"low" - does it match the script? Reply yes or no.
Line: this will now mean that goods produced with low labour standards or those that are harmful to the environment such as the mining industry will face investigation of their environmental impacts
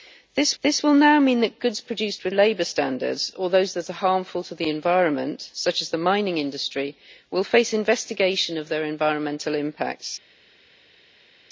no